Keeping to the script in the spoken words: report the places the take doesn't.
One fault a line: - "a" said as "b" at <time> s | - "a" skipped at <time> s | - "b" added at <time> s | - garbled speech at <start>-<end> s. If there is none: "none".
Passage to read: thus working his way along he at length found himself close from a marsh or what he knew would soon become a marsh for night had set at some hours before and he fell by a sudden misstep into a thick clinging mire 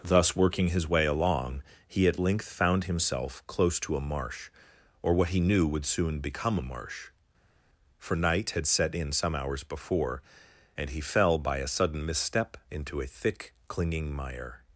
- "from" said as "to" at 3.8 s
- "at" said as "in" at 8.9 s